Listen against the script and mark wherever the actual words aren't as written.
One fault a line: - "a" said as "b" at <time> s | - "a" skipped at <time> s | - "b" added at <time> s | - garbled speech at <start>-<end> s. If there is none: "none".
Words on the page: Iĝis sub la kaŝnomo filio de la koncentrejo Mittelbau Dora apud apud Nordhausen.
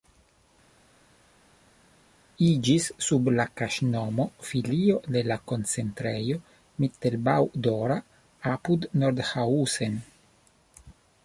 - "apud" skipped at 8.9 s